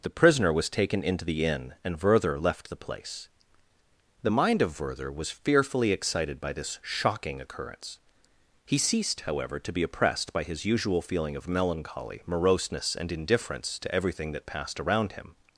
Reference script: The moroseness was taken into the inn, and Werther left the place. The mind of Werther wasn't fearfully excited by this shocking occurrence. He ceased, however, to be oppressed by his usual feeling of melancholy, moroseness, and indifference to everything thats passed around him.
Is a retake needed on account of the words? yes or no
yes